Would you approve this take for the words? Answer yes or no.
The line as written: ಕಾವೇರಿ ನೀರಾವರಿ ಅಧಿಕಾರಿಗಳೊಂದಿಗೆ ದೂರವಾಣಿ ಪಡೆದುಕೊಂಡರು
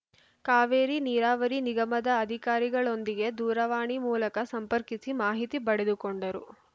no